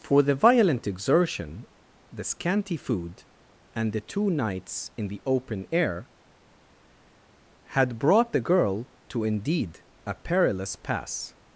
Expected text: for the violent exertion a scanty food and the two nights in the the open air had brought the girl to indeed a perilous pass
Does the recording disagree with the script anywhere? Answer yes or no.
yes